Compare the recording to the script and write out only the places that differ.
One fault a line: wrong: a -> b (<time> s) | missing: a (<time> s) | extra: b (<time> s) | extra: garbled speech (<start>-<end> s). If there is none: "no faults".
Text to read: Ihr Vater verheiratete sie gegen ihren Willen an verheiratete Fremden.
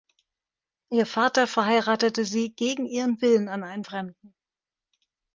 wrong: verheiratete -> einen (3.6 s)